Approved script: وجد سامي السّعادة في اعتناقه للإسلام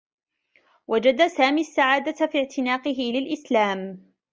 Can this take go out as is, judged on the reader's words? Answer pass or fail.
pass